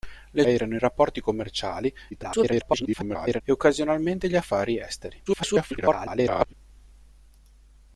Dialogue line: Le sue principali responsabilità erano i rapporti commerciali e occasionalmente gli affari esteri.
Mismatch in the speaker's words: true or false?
true